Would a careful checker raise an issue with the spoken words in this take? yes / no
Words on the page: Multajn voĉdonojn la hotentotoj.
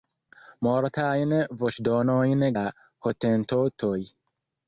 no